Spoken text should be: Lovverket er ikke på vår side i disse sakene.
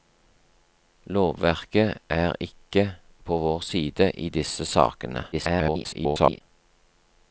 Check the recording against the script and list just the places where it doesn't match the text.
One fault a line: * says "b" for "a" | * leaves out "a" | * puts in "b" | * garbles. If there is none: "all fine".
* garbles